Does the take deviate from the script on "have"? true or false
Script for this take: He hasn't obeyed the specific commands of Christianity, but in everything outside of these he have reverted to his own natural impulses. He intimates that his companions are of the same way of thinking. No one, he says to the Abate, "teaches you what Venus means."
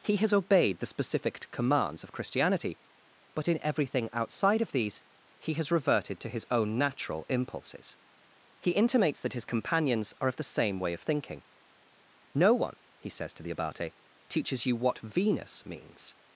true